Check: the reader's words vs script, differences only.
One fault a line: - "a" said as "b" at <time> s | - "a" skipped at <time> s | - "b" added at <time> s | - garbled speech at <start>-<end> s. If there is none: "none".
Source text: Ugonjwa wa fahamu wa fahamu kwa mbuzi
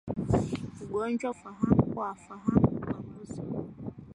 none